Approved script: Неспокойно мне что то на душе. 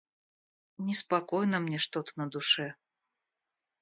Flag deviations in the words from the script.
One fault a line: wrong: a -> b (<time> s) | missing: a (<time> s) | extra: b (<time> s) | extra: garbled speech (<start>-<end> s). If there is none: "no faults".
no faults